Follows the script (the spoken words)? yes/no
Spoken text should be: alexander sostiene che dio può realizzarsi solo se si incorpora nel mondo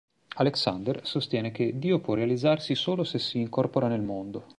yes